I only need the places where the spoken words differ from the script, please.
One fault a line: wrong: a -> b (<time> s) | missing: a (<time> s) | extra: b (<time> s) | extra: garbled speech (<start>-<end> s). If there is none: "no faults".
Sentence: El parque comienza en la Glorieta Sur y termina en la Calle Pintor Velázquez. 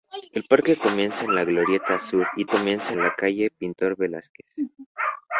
wrong: termina -> comienza (2.5 s)